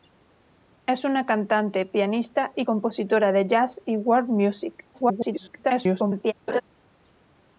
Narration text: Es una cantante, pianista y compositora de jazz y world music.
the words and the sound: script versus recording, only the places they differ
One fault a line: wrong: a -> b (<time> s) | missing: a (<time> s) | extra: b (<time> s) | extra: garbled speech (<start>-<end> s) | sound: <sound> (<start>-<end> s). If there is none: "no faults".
extra: garbled speech (4.9-6.3 s)
sound: laugh (6.5-6.6 s)